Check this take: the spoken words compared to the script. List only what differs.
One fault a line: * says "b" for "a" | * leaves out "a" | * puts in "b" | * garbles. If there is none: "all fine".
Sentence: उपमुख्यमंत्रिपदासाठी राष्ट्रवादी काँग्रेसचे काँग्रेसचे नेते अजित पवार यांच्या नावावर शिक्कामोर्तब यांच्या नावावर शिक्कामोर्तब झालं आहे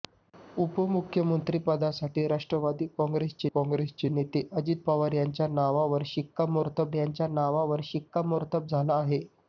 all fine